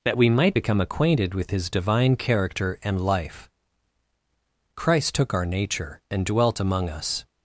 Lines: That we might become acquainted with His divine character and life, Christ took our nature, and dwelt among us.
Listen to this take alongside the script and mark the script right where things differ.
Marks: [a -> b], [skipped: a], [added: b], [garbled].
That we might become acquainted with His divine character and life, Christ took our nature, and dwelt among us.